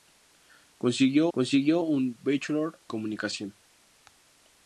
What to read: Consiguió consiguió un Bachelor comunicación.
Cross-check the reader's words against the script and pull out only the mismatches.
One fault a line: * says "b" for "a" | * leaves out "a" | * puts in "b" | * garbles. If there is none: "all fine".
all fine